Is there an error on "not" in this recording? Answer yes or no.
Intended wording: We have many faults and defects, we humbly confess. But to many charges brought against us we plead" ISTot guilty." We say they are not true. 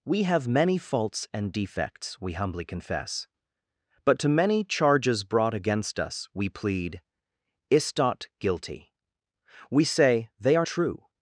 yes